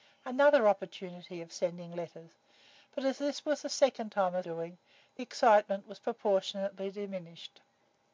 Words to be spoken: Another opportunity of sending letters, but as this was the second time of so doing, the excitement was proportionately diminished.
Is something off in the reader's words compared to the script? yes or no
yes